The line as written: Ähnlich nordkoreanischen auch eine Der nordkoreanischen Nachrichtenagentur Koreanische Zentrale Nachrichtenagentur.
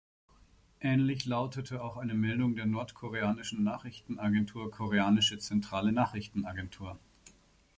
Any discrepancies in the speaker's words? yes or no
yes